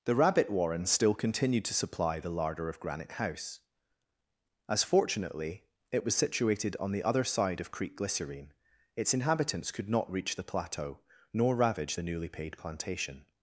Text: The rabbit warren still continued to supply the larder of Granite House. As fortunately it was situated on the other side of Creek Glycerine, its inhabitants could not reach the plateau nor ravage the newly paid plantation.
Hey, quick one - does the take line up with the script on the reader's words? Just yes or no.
yes